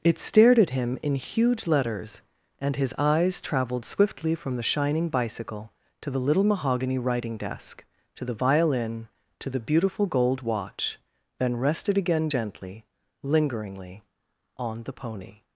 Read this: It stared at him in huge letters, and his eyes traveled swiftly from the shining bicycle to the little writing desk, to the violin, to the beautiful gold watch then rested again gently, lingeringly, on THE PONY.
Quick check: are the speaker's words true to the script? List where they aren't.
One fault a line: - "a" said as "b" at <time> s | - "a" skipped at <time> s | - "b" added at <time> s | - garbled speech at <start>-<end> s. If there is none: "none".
- "mahogany" added at 6.4 s